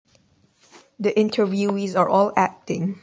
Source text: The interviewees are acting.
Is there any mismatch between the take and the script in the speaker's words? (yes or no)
yes